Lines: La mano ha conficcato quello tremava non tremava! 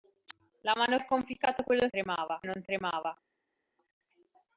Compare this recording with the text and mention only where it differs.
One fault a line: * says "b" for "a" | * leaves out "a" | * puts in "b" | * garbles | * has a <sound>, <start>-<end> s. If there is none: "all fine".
all fine